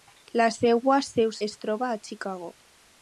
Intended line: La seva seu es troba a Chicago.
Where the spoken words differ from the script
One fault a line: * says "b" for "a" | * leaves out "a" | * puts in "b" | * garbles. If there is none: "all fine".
all fine